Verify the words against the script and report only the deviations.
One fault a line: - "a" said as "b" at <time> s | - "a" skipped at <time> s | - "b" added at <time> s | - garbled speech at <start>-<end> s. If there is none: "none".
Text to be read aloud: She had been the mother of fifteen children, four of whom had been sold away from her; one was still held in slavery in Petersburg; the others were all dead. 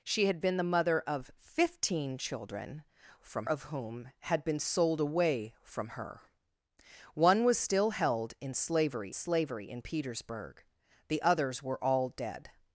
- "four" said as "from" at 3.2 s
- "slavery" added at 9.1 s